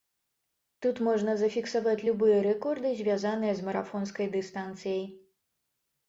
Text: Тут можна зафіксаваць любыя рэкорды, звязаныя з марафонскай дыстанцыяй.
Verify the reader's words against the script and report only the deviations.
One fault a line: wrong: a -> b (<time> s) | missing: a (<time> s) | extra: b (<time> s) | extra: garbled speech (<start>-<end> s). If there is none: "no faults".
no faults